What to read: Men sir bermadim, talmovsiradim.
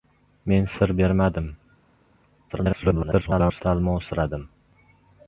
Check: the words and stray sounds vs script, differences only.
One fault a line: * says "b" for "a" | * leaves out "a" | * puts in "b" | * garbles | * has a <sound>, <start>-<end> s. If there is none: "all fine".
* garbles